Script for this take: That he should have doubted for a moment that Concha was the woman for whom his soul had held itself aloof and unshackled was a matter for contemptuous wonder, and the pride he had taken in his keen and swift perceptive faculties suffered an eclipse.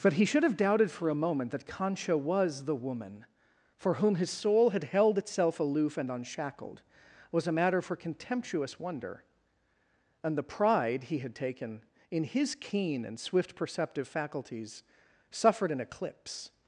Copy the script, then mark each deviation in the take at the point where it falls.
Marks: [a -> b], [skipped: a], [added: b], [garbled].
[That -> But] he should have doubted for a moment that Concha was the woman for whom his soul had held itself aloof and unshackled was a matter for contemptuous wonder, and the pride he had taken in his keen and swift perceptive faculties suffered an eclipse.